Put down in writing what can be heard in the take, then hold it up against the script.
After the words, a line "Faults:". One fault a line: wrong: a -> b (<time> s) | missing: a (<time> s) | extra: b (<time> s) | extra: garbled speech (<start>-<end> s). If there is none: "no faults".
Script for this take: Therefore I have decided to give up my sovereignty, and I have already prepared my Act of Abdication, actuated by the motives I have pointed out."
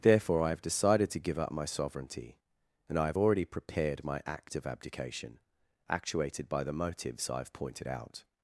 Therefore I have decided to give up my sovereignty, and I have already prepared my Act of Abdication, actuated by the motives I have pointed out."
Faults:
no faults